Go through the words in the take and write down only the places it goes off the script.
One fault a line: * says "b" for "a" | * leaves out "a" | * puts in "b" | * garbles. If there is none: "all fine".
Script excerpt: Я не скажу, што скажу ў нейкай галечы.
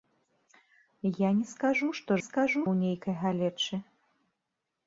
all fine